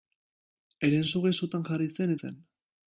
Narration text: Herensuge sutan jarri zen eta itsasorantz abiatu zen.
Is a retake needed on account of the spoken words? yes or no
yes